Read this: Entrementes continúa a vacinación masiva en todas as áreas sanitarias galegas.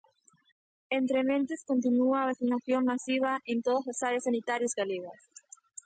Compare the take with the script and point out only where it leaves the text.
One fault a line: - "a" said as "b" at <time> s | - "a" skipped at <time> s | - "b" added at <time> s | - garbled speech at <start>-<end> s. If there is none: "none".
none